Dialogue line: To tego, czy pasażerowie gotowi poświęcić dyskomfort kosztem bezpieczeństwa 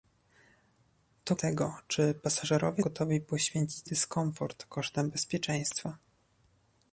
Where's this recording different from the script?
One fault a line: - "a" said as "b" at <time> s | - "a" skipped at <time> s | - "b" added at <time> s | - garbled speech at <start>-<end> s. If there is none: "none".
none